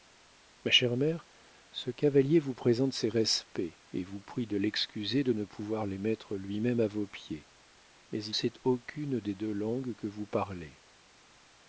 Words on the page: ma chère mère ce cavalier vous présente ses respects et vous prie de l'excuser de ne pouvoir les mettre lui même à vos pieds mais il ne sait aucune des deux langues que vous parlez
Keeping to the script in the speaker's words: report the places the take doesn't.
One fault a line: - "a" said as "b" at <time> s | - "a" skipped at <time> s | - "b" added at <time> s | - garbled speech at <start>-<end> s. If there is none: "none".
- "ne" skipped at 8.3 s